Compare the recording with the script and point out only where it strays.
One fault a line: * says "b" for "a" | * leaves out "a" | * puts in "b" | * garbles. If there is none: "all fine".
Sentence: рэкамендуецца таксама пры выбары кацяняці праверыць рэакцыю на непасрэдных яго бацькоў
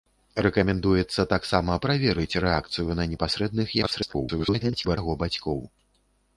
* leaves out "пры выбары кацяняці"
* garbles